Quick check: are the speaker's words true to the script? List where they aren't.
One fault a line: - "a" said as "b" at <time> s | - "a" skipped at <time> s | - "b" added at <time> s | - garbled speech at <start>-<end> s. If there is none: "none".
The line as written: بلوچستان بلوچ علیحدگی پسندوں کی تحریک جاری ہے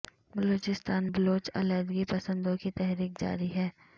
none